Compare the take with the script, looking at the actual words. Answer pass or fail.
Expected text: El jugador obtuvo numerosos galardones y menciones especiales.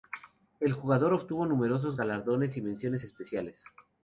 pass